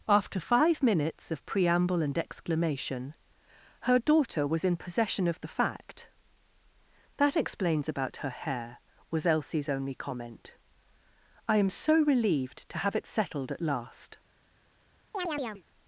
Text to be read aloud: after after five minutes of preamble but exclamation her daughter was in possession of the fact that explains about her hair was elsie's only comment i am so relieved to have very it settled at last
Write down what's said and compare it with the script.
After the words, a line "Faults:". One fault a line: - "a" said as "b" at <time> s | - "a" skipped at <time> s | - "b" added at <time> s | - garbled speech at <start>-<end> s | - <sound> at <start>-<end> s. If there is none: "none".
after five minutes of preamble and exclamation her daughter was in possession of the fact that explains about her hair was elsie's only comment i am so relieved to have it settled at last
Faults:
- "after" skipped at 0.4 s
- "but" said as "and" at 2.0 s
- "very" skipped at 12.9 s
- chirp at 15.1-15.6 s